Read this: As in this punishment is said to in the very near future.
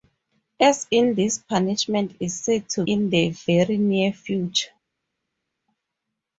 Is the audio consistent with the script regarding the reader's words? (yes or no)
yes